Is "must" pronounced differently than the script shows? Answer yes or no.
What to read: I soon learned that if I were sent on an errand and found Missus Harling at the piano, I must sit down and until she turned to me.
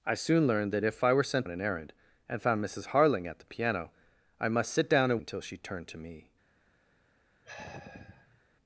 no